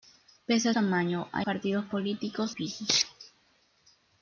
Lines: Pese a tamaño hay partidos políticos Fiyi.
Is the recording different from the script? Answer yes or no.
no